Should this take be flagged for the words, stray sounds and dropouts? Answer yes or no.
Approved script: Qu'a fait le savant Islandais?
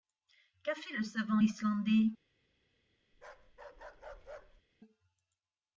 yes